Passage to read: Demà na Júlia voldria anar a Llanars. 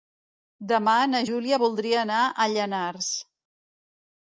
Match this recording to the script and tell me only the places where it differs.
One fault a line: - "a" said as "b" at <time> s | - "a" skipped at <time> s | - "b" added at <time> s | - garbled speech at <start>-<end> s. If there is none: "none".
none